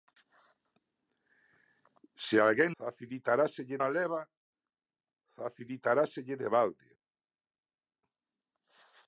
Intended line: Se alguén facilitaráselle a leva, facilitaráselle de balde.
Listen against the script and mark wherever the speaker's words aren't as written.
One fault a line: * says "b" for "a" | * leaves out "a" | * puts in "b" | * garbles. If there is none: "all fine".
all fine